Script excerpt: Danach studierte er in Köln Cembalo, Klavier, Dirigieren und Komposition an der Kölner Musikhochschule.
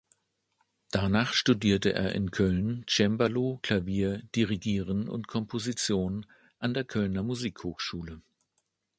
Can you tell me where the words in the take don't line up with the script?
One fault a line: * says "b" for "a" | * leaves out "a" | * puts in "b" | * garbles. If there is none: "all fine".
all fine